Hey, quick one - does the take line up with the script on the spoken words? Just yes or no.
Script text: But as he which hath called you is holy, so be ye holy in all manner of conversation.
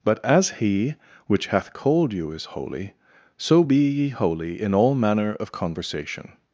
yes